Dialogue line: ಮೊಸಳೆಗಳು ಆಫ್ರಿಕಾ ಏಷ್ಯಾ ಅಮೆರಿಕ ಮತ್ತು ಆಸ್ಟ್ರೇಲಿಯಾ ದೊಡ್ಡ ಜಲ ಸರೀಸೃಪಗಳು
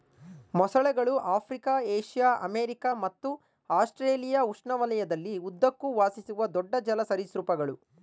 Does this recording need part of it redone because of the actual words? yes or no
yes